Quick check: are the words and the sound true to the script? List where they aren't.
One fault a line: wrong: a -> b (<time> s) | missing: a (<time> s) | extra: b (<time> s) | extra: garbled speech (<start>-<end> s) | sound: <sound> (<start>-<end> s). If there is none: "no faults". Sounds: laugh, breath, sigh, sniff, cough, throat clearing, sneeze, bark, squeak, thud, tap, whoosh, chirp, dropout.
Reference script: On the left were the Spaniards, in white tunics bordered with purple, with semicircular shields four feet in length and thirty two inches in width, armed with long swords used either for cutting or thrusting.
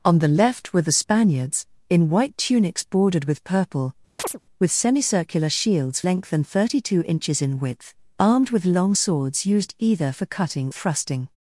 sound: chirp (4.2-4.4 s)
missing: four feet in (6.0 s)
missing: or (10.7 s)